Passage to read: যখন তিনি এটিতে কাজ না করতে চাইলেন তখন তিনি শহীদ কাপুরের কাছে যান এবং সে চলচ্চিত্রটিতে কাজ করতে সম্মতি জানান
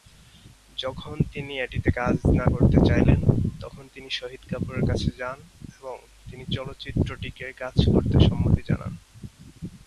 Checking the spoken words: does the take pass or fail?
fail